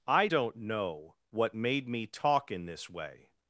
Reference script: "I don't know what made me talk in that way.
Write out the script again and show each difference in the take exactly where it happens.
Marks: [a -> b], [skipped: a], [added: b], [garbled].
"I don't know what made me talk in [that -> this] way.